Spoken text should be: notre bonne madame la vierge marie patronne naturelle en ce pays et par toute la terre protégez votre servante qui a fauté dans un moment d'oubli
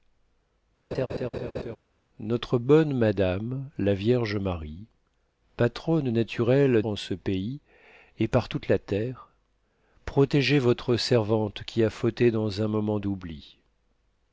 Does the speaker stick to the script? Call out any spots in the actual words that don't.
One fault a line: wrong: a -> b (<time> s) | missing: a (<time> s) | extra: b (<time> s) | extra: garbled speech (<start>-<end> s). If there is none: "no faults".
no faults